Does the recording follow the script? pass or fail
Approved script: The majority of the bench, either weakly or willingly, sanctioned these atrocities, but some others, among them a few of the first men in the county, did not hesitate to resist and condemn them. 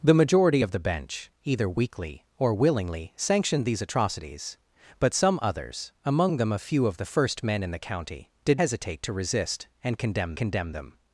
fail